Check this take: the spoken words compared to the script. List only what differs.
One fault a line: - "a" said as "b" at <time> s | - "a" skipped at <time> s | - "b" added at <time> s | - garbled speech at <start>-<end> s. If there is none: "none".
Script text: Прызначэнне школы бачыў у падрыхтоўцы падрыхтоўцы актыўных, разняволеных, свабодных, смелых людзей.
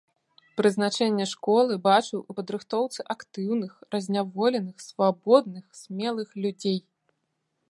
- "падрыхтоўцы" skipped at 3.0 s